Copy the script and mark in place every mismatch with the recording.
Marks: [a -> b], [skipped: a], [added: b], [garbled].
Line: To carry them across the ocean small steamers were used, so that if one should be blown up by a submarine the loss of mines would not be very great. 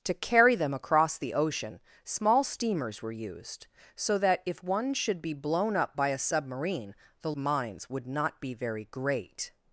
To carry them across the ocean small steamers were used, so that if one should be blown up by a submarine the [skipped: loss of] mines would not be very great.